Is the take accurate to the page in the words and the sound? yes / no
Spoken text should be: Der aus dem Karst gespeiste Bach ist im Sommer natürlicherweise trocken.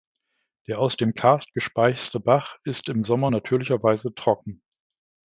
yes